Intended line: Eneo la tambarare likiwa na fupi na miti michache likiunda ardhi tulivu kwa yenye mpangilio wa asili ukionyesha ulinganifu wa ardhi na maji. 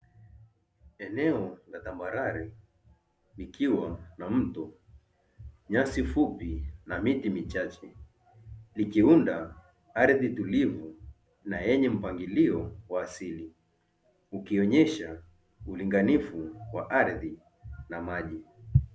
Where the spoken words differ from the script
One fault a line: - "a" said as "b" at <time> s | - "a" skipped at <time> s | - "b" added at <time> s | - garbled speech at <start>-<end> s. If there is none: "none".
- "mto nyasi" added at 4.3 s
- "kwa" said as "na" at 11.4 s